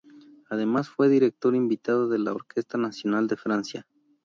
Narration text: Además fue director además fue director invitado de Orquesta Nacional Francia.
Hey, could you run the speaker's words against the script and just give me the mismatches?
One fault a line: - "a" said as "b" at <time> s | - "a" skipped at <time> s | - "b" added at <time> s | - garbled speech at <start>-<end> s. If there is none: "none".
- "además fue director" skipped at 1.6 s
- "la" added at 2.2 s
- "de" added at 3.3 s